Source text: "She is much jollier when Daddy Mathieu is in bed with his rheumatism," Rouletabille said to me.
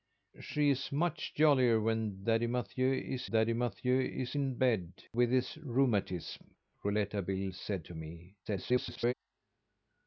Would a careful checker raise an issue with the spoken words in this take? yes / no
yes